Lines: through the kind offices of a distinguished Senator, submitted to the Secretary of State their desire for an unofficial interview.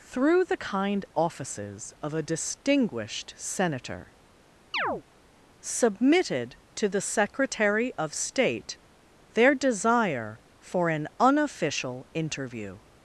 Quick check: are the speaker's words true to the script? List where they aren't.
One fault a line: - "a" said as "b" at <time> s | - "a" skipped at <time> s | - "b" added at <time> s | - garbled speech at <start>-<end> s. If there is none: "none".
none